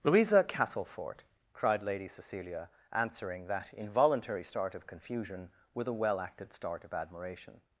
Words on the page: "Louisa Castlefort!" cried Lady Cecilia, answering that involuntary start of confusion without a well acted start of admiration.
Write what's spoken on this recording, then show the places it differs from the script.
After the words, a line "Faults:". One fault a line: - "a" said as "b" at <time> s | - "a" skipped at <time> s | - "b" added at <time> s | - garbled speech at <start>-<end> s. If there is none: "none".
"Louisa Castlefort!" cried Lady Cecilia, answering that involuntary start of confusion with a well acted start of admiration.
Faults:
- "without" said as "with" at 5.8 s